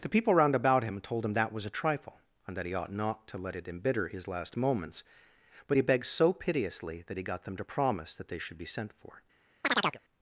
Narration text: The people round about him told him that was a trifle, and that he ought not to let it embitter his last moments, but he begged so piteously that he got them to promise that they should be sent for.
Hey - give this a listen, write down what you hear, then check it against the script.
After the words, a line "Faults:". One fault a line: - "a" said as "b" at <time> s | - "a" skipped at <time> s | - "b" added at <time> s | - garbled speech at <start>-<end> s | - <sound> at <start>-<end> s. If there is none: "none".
The people round about him told him that was a trifle, and that he ought not to let it embitter his last moments, but he begged so piteously that he got them to promise that they should be sent for.
Faults:
- chirp at 9.6-10.0 s